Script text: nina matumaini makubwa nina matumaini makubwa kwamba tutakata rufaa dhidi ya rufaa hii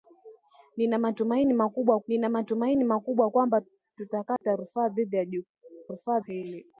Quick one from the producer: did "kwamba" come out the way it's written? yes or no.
yes